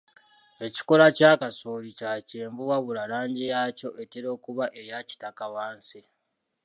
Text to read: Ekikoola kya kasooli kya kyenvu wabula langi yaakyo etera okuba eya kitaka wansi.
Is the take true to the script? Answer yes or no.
yes